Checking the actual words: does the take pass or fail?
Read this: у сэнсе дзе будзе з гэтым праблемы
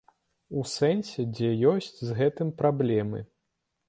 fail